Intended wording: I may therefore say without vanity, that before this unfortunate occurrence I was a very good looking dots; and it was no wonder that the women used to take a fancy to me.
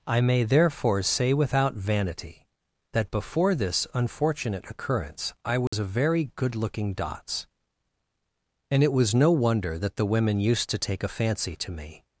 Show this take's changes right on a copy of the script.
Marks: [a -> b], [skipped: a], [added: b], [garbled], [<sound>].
I may therefore say without vanity, that before this unfortunate occurrence I was [dropout] a very good looking dots; and it was no wonder that the women used to take a fancy to me.